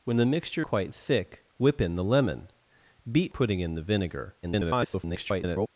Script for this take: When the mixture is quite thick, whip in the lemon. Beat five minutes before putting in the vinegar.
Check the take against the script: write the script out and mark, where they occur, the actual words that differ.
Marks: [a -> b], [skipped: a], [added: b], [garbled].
When the mixture [skipped: is] quite thick, whip in the lemon. Beat [skipped: five minutes before] putting in the vinegar. [garbled]